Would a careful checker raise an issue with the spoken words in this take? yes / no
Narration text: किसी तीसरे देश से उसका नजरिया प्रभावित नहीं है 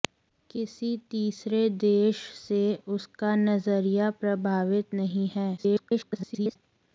yes